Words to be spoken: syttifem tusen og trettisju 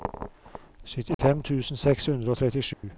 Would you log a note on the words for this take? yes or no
yes